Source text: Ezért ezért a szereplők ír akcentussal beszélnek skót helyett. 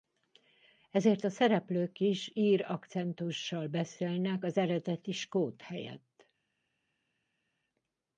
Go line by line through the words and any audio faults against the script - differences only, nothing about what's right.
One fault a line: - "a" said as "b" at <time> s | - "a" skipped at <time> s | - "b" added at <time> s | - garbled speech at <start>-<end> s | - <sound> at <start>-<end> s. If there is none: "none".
- "ezért" skipped at 1.2 s
- "is" added at 2.0 s
- "az eredeti" added at 4.4 s